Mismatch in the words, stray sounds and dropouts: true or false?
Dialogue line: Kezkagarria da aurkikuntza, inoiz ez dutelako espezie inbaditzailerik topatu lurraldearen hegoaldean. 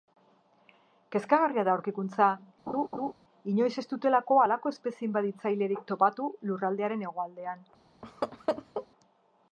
true